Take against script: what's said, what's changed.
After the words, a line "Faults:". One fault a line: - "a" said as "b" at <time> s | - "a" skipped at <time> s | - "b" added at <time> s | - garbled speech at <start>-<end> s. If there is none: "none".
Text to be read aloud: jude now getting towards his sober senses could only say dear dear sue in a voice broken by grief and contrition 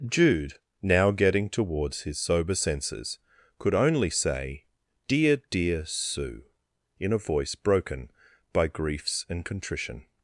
jude now getting towards his sober senses could only say dear dear sue in a voice broken by griefs and contrition
Faults:
- "grief" said as "griefs" at 8.7 s